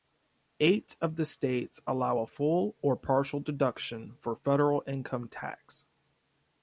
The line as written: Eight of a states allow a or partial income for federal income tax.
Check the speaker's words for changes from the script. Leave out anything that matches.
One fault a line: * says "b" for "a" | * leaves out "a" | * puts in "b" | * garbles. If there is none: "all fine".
* says "the" for "a"
* puts in "full"
* says "deduction" for "income"